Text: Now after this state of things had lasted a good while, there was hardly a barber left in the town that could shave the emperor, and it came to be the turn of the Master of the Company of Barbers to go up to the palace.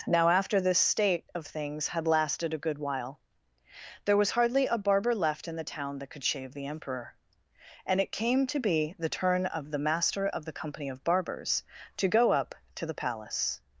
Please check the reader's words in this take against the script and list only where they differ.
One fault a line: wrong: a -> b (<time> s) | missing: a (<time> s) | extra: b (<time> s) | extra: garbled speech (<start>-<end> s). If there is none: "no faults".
no faults